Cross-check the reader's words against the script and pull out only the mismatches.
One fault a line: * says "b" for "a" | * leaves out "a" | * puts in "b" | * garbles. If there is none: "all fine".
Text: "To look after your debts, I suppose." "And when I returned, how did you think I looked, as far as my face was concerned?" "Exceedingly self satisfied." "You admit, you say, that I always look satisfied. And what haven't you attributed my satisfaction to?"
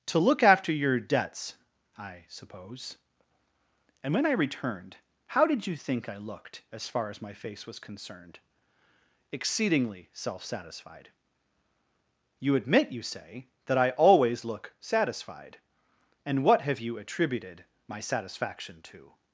* says "have" for "haven't"